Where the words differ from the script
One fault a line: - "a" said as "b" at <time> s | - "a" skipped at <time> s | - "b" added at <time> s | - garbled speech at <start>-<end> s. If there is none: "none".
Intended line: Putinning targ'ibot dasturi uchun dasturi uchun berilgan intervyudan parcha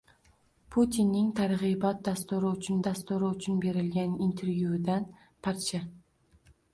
none